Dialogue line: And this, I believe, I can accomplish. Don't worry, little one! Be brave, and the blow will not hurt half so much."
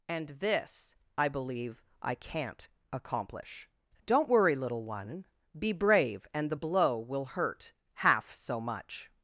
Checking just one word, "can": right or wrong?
wrong